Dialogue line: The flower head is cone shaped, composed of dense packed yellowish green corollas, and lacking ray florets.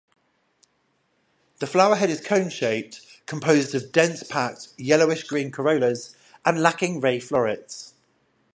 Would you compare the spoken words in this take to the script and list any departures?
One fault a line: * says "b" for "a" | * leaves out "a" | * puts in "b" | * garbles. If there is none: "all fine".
all fine